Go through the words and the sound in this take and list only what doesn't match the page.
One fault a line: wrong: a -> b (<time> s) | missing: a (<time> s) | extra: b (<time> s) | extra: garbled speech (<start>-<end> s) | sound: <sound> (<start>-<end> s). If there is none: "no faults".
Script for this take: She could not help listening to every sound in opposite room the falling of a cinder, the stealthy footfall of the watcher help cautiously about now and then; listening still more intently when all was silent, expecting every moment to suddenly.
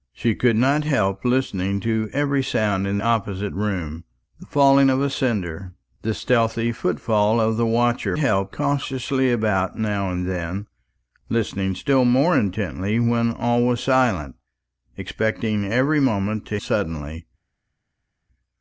no faults